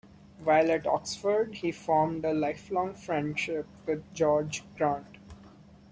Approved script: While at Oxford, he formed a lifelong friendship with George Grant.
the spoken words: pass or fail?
pass